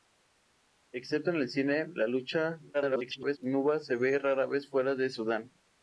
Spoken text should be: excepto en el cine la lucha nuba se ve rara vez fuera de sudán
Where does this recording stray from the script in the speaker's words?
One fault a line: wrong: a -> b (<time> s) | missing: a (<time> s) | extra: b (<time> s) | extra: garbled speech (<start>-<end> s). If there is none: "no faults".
extra: garbled speech (2.7-3.4 s)